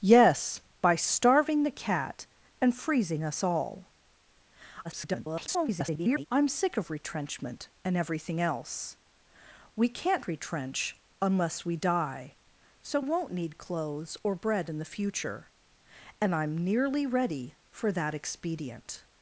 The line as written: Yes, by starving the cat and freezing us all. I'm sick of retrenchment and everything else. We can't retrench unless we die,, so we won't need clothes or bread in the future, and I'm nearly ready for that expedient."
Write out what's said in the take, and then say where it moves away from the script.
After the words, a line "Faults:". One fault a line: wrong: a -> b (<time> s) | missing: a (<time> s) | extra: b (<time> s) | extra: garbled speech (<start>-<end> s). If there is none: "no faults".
Yes, by starving the cat and freezing us all. [garbled] I'm sick of retrenchment and everything else. We can't retrench unless we die,, so won't need clothes or bread in the future, and I'm nearly ready for that expedient."
Faults:
extra: garbled speech (4.8-6.3 s)
missing: we (13.0 s)